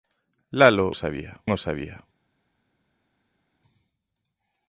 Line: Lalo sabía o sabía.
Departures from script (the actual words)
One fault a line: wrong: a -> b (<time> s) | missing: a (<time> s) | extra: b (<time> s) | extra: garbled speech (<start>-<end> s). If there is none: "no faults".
no faults